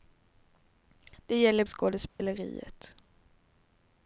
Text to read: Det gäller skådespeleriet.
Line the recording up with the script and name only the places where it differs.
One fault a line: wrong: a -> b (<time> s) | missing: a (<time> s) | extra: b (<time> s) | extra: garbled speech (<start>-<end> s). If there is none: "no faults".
no faults